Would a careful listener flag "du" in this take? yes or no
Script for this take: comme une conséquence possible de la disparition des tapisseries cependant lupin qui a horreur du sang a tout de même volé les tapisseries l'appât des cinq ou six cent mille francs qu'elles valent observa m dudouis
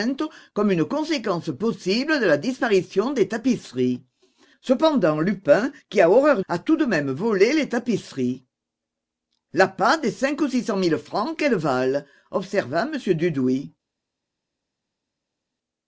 yes